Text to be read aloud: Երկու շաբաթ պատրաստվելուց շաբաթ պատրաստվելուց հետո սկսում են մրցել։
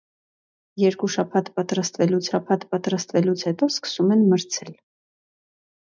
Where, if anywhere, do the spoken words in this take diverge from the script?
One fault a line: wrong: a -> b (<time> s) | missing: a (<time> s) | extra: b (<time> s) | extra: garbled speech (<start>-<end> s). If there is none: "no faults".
no faults